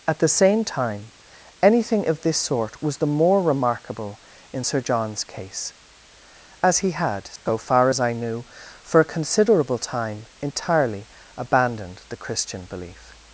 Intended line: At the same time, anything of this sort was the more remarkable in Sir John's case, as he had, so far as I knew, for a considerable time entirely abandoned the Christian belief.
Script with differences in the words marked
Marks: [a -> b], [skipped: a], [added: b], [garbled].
At the same time, anything of this sort was the more remarkable in Sir John's case, as he had, so far as I knew, for a considerable time entirely abandoned the Christian belief.